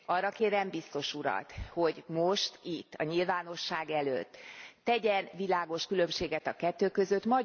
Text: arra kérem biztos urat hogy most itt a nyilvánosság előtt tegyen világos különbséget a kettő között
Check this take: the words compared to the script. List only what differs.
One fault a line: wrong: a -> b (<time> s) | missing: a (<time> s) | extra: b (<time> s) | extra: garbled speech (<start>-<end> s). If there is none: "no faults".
no faults